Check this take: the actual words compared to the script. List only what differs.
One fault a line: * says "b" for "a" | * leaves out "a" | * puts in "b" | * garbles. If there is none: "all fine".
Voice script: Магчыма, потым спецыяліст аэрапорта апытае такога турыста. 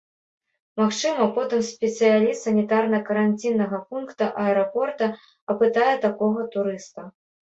* puts in "санітарна каранціннага пункта"